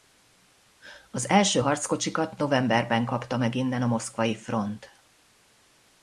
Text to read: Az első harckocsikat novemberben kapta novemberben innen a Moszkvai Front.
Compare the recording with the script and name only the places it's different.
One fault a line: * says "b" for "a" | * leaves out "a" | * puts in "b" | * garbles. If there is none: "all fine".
* says "meg" for "novemberben"